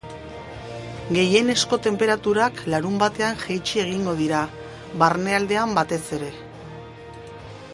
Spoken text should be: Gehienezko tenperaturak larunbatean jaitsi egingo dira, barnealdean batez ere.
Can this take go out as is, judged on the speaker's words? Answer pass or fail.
pass